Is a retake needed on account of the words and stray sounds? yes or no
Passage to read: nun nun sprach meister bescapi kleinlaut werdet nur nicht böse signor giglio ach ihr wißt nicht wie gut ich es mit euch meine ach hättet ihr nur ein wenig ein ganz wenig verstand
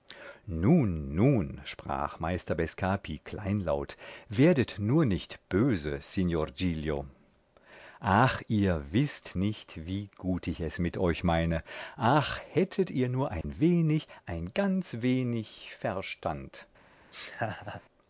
yes